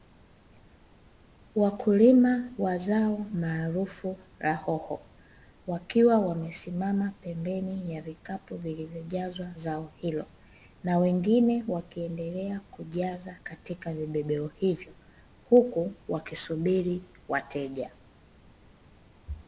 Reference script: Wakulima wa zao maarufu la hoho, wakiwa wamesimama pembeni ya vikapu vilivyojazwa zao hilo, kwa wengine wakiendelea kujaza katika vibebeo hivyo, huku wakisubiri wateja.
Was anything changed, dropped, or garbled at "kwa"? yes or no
yes